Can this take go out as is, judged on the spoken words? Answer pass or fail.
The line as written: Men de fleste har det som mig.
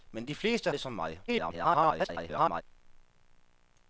fail